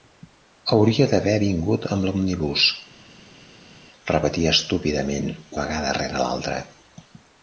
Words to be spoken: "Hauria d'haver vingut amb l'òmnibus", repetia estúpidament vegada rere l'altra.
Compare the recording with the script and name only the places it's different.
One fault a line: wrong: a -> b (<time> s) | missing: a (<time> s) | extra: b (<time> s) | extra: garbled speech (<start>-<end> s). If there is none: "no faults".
no faults